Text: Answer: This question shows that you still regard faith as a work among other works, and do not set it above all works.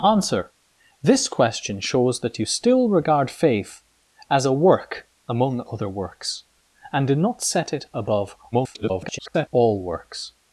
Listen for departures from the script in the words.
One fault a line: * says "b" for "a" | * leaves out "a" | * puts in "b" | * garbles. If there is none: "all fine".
* garbles